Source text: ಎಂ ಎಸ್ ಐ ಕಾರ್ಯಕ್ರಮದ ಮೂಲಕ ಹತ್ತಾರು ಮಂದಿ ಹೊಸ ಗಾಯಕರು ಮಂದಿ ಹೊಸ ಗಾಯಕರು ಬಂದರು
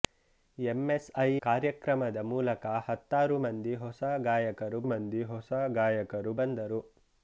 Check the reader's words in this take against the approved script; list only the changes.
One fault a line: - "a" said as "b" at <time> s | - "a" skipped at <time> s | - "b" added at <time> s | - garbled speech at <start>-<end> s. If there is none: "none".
none